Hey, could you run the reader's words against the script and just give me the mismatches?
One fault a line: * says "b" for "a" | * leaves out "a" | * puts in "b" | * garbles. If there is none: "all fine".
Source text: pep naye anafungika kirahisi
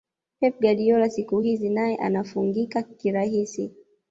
* puts in "guardiola siku hizi"